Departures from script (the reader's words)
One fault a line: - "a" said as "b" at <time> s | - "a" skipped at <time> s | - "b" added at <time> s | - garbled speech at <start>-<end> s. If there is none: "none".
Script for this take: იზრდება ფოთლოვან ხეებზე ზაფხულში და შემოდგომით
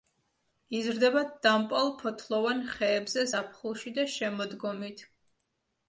- "დამპალ" added at 1.5 s